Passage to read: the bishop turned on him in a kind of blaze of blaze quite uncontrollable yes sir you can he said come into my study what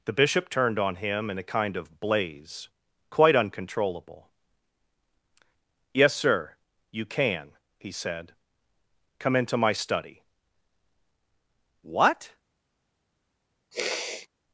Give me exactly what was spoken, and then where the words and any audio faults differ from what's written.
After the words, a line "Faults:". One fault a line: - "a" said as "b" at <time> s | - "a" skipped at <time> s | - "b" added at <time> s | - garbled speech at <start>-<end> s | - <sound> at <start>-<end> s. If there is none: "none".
the bishop turned on him in a kind of blaze quite uncontrollable yes sir you can he said come into my study what
Faults:
- "of blaze" skipped at 2.7 s
- sniff at 13.7-14.3 s